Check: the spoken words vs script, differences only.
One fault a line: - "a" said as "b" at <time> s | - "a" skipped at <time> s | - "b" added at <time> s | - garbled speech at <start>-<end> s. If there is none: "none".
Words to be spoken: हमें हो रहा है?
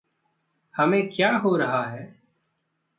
- "क्या" added at 1.1 s